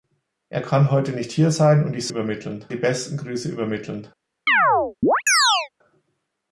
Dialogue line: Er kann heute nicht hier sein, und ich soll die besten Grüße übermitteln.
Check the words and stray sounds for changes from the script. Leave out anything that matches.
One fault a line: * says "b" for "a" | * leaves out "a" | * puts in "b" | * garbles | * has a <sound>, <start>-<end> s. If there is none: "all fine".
* says "übermitteln" for "soll"
* has a chirp, 4.5-5.7 s